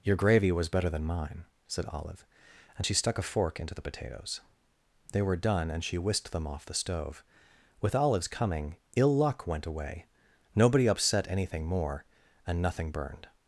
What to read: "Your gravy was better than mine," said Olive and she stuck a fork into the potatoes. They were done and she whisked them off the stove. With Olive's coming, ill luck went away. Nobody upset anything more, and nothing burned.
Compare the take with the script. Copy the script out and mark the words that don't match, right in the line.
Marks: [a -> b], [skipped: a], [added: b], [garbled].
"Your gravy was better than mine," said Olive and she stuck a fork into the potatoes. They were done and she whisked them off the stove. With Olive's coming, ill luck went away. Nobody upset anything more, and nothing burned.